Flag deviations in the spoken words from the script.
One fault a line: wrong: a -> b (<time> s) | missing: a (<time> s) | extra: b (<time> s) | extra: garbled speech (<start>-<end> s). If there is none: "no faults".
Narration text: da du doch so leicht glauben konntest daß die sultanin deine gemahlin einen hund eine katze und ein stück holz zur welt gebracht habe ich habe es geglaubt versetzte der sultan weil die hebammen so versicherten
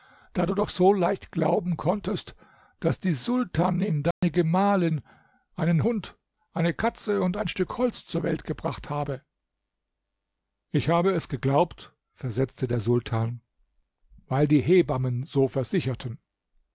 no faults